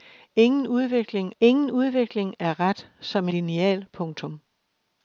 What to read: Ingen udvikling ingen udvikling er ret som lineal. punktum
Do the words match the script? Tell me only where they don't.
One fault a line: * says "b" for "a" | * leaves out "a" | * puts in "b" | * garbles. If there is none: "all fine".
all fine